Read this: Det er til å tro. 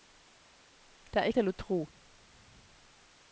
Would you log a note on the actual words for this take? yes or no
no